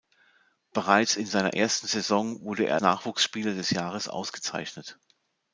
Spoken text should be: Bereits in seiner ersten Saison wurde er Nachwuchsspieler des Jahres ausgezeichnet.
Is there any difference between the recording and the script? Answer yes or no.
no